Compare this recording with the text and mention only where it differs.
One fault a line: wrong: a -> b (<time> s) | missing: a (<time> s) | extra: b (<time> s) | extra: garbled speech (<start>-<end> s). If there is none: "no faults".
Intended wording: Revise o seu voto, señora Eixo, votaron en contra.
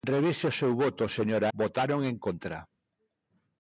missing: Eixo (1.5 s)